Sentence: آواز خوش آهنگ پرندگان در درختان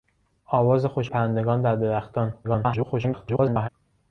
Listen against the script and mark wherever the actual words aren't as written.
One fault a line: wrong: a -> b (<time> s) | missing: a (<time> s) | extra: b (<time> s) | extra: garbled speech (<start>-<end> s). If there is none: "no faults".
missing: آهنگ (1.1 s)
extra: garbled speech (2.4-3.7 s)